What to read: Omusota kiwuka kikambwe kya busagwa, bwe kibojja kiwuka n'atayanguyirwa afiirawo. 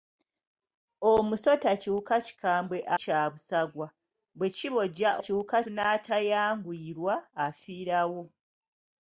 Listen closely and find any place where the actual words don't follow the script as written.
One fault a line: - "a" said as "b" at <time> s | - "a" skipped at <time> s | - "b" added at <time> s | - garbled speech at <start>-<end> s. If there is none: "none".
none